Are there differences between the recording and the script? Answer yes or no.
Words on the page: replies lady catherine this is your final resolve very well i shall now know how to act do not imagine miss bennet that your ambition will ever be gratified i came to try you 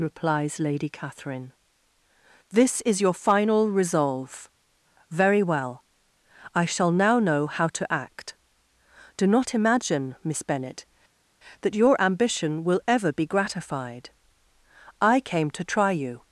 no